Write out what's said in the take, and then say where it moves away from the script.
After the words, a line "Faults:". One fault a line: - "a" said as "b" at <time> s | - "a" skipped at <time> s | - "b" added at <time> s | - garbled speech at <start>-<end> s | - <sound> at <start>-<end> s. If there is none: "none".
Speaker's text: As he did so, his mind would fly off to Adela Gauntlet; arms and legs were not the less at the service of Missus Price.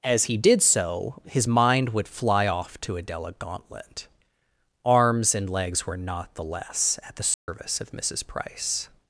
As he did so, his mind would fly off to Adela Gauntlet; arms and legs were not the less at the service of Missus Price.
Faults:
- dropout at 7.3-7.5 s